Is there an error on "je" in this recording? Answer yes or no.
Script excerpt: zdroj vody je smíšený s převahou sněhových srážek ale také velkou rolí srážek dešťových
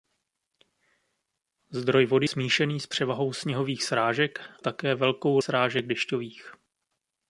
yes